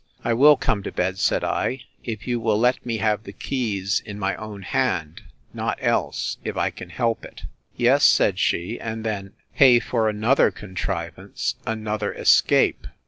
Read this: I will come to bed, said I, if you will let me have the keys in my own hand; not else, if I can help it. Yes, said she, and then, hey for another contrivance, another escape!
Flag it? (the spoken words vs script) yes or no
no